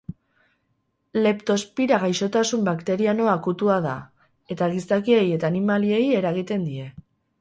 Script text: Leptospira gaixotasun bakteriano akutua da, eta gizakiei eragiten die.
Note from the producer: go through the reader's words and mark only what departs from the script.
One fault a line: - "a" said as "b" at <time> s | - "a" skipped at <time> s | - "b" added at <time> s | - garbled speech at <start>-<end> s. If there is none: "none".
- "eta animaliei" added at 5.4 s